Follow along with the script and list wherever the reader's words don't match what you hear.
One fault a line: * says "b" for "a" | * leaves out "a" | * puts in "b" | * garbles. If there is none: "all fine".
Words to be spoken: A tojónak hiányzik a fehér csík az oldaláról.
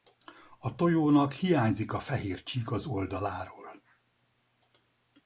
all fine